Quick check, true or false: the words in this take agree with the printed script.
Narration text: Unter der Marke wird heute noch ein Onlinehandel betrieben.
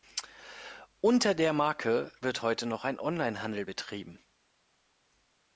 true